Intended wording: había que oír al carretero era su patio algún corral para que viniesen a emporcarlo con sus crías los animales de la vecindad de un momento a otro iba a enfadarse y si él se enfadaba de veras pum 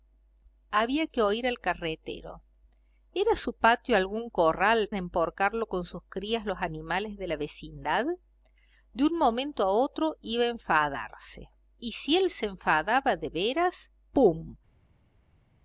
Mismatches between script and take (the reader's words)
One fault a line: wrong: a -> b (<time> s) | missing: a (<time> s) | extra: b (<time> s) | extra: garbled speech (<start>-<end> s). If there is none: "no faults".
missing: para que viniesen (4.9 s)